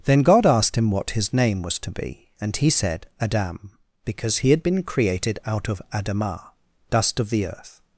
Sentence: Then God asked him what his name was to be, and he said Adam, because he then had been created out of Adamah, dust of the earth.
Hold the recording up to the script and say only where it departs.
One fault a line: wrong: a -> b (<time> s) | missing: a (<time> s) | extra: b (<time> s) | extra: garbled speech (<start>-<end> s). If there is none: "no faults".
missing: then (4.5 s)